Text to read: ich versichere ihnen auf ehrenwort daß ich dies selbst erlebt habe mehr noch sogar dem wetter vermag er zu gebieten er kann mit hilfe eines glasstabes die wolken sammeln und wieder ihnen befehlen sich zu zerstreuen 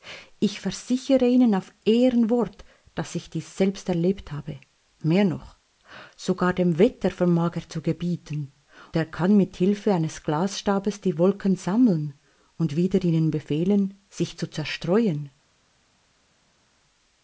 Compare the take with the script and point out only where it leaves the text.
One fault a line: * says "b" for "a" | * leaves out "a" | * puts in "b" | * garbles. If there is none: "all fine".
all fine